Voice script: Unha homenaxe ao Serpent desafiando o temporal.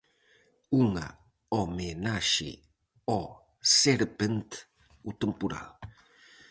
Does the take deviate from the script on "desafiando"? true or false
true